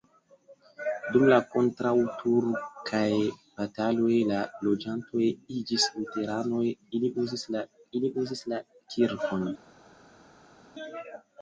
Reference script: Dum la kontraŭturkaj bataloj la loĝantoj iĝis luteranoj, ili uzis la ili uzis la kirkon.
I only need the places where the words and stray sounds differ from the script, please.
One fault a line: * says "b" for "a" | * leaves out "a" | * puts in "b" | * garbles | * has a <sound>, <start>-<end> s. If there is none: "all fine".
all fine